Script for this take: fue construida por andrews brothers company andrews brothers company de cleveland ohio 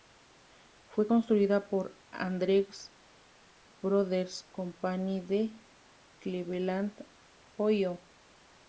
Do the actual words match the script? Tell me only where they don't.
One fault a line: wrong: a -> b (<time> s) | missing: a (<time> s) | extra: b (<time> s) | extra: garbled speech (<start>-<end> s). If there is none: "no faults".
missing: andrews brothers company (5.2 s)